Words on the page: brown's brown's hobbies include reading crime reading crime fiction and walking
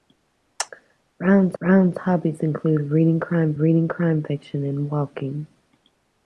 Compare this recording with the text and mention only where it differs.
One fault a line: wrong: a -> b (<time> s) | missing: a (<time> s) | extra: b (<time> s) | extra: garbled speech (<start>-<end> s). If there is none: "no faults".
no faults